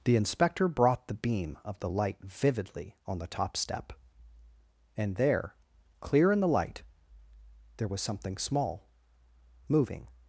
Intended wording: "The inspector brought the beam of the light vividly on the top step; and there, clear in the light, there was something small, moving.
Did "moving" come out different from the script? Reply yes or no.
no